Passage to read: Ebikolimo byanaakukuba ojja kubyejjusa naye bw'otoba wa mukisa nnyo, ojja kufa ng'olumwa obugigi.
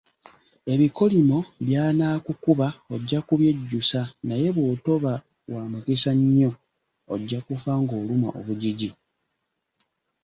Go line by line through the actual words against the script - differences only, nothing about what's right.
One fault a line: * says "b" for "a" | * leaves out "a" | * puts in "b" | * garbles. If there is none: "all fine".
all fine